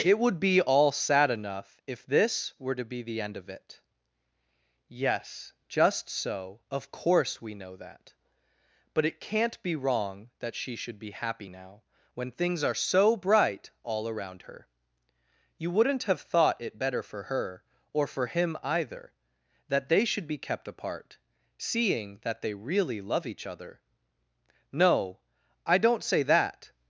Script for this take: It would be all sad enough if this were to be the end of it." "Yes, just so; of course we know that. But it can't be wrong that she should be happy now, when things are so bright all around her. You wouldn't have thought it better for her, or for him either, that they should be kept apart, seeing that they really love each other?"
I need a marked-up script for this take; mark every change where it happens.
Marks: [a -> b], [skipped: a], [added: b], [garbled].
It would be all sad enough if this were to be the end of it." "Yes, just so; of course we know that. But it can't be wrong that she should be happy now, when things are so bright all around her. You wouldn't have thought it better for her, or for him either, that they should be kept apart, seeing that they really love each other?" [added: No I don't say that]